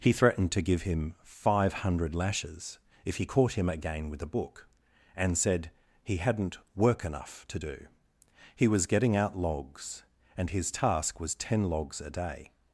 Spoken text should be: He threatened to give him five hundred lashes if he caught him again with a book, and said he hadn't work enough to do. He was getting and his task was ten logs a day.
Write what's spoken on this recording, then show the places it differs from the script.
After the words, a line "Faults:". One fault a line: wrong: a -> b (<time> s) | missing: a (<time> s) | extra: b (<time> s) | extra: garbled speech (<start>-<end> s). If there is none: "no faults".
He threatened to give him five hundred lashes if he caught him again with a book, and said he hadn't work enough to do. He was getting out logs, and his task was ten logs a day.
Faults:
extra: out logs (9.1 s)